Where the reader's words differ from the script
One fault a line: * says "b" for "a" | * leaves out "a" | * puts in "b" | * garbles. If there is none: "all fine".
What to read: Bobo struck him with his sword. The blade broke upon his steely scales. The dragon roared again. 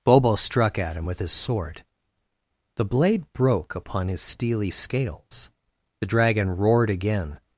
* puts in "at"